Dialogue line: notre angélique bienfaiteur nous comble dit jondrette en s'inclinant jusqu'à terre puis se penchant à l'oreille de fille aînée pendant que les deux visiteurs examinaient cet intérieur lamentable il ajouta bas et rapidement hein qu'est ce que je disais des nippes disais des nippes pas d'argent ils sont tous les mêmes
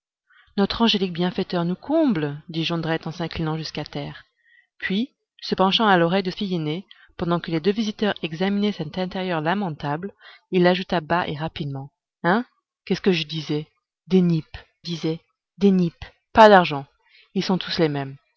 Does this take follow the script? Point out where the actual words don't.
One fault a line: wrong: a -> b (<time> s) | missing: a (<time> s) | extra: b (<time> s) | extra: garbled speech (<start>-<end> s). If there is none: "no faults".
no faults